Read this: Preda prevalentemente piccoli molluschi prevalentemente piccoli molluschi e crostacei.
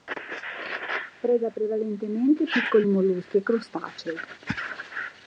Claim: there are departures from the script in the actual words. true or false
true